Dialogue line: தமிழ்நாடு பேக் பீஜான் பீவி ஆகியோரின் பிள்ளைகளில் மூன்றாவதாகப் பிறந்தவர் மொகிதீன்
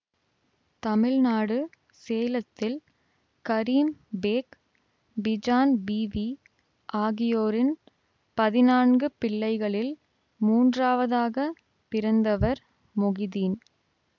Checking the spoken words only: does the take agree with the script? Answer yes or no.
no